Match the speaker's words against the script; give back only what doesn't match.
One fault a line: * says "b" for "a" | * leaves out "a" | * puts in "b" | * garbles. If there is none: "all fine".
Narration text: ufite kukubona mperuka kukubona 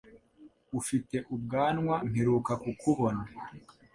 * says "ubwanwa" for "kukubona"